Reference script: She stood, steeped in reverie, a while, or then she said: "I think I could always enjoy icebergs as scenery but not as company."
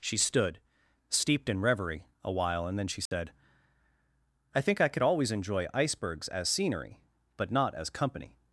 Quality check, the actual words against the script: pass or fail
fail